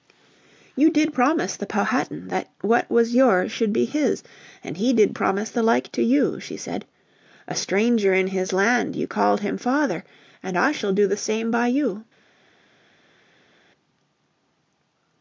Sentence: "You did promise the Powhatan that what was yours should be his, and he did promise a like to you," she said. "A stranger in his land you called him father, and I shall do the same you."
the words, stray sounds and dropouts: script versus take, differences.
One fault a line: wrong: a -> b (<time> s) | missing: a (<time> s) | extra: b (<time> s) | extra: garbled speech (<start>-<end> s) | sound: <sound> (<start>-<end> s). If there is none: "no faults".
wrong: a -> the (5.5 s)
extra: by (11.5 s)